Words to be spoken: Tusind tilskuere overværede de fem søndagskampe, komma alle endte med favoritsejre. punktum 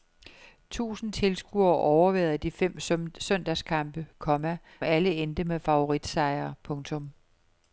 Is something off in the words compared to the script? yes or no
no